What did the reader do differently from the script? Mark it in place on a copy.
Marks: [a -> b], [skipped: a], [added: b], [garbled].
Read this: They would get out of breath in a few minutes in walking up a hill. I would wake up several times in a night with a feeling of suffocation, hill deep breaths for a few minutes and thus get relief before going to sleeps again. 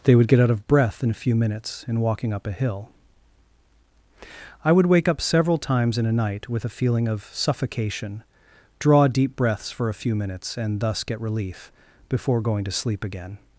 They would get out of breath in a few minutes in walking up a hill. I would wake up several times in a night with a feeling of suffocation, [hill -> draw] deep breaths for a few minutes and thus get relief before going to [sleeps -> sleep] again.